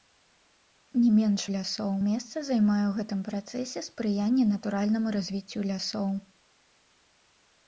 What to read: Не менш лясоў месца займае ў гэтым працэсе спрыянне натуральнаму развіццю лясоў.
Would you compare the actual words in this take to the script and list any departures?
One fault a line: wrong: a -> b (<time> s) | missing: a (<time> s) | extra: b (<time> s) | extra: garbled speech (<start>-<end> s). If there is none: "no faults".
no faults